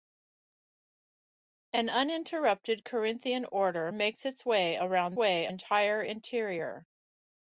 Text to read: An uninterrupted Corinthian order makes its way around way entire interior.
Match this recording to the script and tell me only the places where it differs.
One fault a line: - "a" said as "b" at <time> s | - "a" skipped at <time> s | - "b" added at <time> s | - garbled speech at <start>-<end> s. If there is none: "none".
none